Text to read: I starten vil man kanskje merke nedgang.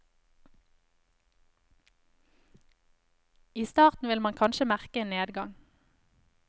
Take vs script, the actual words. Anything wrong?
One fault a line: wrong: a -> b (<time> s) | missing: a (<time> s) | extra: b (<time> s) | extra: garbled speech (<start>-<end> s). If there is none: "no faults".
extra: en (5.0 s)